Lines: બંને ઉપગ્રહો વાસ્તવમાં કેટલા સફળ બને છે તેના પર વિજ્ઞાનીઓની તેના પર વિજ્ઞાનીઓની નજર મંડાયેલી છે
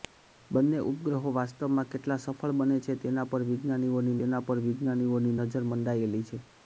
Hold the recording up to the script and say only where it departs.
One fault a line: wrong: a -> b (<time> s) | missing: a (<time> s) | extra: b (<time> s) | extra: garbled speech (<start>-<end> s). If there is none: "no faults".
no faults